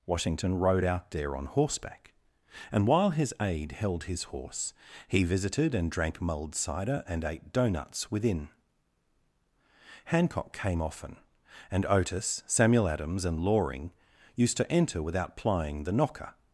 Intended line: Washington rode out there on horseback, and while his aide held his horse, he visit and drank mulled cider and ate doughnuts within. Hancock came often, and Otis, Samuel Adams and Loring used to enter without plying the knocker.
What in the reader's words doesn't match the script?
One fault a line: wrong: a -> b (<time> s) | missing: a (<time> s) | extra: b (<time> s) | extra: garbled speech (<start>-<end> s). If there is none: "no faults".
wrong: visit -> visited (5.2 s)